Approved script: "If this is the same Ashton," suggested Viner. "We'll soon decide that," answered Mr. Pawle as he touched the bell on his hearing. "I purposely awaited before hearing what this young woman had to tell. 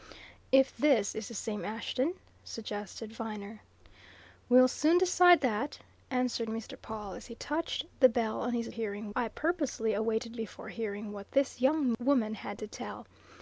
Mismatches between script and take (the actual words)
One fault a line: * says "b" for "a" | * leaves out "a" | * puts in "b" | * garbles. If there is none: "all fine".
all fine